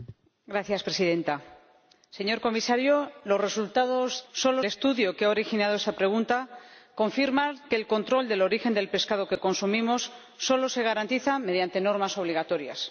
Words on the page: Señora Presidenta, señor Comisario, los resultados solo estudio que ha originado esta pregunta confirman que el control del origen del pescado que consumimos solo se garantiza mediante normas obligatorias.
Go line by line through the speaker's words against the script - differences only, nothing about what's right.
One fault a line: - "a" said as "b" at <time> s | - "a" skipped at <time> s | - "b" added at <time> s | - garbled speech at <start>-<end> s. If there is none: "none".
none